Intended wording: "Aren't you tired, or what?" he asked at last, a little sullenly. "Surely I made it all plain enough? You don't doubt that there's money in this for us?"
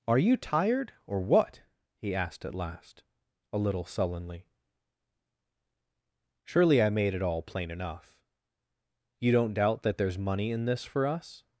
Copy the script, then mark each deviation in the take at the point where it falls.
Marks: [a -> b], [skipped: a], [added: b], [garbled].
["Aren't -> Are] you tired, or what?" he asked at last, a little sullenly. "Surely I made it all plain enough? You don't doubt that there's money in this for us?"